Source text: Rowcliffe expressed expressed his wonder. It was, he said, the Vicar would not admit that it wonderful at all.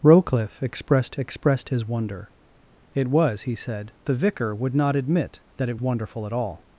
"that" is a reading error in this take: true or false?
false